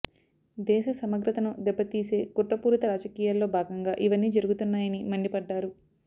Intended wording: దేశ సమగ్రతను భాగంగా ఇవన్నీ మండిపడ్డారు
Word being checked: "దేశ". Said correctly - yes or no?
yes